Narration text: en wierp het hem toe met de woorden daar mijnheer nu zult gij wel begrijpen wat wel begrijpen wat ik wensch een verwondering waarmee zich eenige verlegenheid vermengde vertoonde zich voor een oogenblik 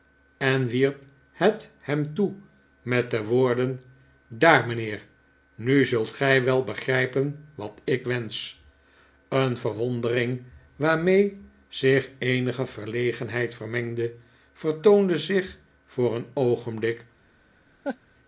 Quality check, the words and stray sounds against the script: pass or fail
fail